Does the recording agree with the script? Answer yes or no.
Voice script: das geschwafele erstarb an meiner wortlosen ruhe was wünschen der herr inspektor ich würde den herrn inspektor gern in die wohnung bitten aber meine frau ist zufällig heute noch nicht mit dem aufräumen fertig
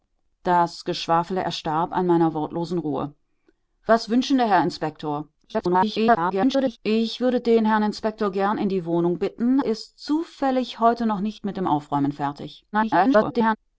no